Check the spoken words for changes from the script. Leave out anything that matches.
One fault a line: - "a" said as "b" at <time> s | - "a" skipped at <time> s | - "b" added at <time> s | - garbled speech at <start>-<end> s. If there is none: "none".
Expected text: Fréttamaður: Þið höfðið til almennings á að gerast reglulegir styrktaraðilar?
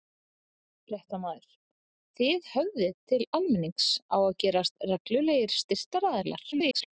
- garbled speech at 6.5-6.9 s